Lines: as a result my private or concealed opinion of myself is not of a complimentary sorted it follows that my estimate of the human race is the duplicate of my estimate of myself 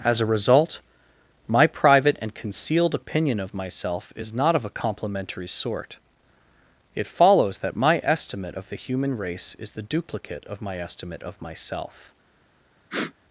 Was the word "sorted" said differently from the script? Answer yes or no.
yes